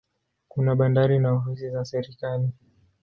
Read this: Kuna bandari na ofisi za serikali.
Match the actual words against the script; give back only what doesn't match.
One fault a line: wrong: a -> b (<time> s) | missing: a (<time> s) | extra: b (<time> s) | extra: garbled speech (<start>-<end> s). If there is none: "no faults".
no faults